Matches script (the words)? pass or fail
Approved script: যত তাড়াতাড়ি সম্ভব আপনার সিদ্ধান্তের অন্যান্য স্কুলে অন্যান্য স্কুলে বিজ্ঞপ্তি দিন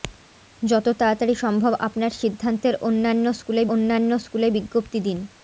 pass